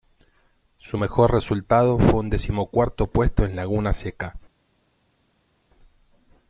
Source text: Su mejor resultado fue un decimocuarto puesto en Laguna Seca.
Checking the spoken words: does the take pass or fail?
pass